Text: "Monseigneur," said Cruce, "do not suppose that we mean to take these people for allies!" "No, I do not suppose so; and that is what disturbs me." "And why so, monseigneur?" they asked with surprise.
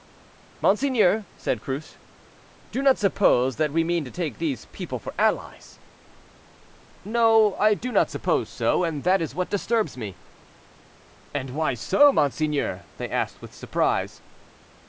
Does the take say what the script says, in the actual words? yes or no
yes